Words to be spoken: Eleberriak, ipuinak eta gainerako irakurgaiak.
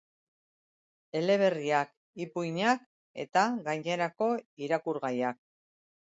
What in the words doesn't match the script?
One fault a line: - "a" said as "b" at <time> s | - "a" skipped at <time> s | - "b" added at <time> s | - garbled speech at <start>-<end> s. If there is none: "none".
none